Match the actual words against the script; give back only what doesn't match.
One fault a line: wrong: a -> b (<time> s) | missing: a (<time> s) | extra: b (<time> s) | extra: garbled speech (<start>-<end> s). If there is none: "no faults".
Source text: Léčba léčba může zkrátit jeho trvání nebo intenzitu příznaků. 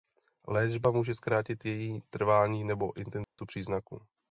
missing: léčba (0.9 s)
wrong: jeho -> její (1.6 s)